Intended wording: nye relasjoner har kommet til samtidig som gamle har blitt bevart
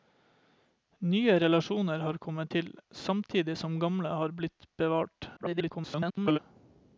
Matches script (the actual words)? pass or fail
fail